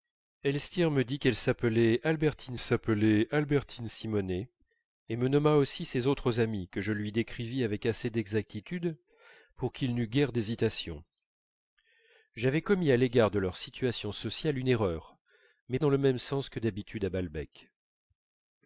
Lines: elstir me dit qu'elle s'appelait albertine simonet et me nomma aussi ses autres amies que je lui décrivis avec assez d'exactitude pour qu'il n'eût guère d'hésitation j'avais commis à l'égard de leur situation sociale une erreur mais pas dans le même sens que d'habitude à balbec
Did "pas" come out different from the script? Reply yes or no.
yes